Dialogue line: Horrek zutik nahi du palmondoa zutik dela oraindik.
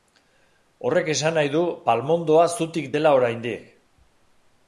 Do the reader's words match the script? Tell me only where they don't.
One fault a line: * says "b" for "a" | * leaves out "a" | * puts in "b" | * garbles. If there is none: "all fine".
* says "esan" for "zutik"